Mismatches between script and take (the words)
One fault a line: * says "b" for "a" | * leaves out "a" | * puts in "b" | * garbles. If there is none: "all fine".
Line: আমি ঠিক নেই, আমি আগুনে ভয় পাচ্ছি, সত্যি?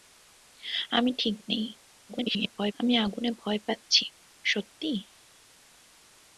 * garbles